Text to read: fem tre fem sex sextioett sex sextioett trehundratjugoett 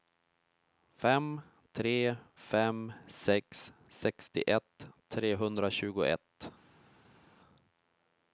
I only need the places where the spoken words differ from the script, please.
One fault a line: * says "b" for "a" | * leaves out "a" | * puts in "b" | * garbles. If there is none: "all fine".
* leaves out "sex sextioett"